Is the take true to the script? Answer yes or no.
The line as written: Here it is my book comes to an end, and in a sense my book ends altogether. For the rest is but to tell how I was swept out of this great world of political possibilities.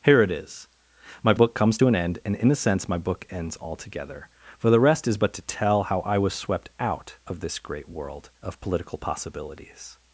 yes